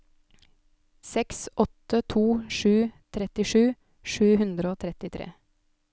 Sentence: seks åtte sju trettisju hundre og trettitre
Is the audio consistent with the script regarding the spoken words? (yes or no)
no